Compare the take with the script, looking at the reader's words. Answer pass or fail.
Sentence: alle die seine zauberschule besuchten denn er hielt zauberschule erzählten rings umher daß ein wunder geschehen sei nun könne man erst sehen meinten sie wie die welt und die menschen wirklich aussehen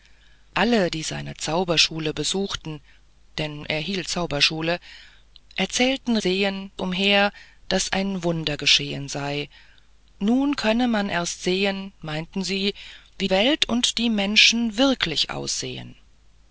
fail